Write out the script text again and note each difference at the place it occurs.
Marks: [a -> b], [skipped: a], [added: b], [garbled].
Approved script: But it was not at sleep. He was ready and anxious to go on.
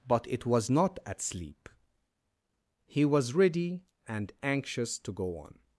But it was not at sleep. He was ready and anxious to go on.